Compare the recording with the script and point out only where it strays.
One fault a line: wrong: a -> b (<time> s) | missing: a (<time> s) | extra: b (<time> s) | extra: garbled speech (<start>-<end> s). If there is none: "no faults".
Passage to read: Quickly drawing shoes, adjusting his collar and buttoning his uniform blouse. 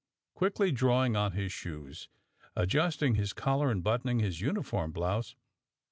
extra: on his (1.1 s)